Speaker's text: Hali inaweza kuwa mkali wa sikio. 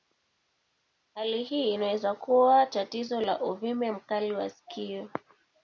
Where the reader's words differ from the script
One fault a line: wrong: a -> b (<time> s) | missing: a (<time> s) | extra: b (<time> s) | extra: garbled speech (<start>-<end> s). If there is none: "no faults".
extra: hii (1.4 s)
extra: tatizo la uvimbe (2.7 s)